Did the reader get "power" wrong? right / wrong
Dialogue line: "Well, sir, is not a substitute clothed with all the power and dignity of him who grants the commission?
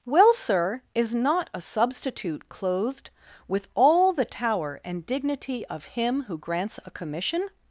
wrong